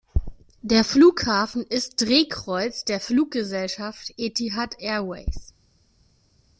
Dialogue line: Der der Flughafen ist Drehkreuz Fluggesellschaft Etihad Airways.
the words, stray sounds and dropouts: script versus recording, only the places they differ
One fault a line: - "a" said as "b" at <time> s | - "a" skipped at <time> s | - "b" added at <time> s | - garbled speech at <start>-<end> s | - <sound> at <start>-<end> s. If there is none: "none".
- "der" skipped at 0.8 s
- "der" added at 2.9 s